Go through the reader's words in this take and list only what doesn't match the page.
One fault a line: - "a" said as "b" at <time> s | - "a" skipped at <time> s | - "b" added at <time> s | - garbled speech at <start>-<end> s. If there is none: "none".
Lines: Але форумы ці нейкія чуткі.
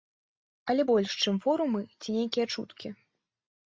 - "больш чым" added at 0.9 s